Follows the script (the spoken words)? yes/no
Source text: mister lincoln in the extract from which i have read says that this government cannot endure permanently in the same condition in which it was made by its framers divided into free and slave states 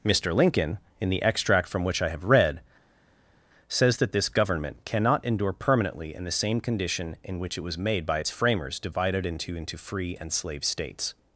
no